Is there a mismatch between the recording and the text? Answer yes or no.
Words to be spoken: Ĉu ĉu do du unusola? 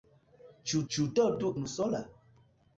no